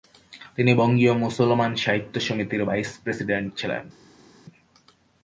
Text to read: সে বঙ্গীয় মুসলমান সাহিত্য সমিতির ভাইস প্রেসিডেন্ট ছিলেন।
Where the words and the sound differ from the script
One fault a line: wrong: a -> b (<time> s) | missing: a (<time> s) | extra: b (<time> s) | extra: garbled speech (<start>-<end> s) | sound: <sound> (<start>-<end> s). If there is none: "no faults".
wrong: সে -> তিনি (0.6 s)